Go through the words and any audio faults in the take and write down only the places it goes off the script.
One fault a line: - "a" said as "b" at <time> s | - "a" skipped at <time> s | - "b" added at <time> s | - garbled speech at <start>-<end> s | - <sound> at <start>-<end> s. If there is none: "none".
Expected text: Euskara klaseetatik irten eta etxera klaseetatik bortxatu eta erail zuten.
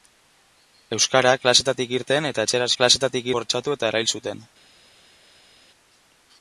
none